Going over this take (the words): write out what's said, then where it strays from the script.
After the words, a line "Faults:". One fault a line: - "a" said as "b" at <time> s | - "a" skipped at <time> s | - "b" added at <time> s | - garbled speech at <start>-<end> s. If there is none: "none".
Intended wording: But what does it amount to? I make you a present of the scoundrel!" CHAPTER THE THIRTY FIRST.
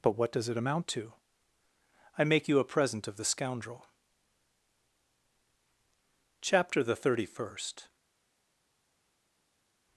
But what does it amount to? I make you a present of the scoundrel!" CHAPTER THE THIRTY FIRST.
Faults:
none